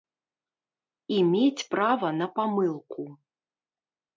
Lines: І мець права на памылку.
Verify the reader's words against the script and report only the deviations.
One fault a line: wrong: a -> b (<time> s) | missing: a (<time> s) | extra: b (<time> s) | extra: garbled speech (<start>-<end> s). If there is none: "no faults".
no faults